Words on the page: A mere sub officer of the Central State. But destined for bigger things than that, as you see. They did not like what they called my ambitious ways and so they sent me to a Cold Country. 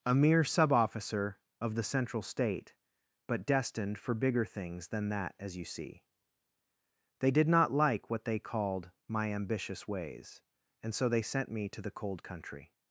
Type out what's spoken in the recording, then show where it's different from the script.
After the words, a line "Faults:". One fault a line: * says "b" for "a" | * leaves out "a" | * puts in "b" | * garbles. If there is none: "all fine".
A mere sub officer of the Central State. But destined for bigger things than that, as you see. They did not like what they called my ambitious ways and so they sent me to the Cold Country.
Faults:
* says "the" for "a"